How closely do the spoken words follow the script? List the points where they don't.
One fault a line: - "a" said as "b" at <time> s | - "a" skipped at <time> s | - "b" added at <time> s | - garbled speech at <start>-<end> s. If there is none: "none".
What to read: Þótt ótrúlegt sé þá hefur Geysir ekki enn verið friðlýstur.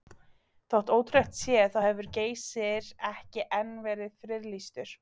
none